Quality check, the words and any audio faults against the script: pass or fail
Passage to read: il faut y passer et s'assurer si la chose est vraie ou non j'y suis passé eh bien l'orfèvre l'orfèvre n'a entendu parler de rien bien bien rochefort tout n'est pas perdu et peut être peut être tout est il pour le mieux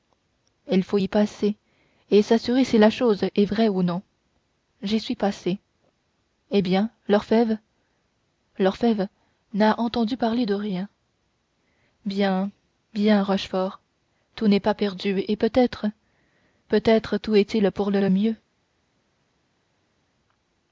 fail